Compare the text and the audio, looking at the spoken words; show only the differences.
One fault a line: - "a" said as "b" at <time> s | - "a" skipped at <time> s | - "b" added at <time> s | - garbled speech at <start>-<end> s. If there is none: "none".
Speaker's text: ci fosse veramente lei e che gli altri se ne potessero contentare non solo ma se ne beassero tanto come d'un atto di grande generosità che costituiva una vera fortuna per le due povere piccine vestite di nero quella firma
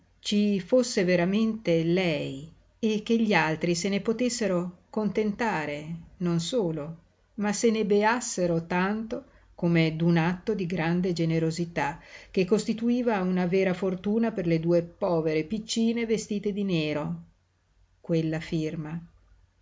none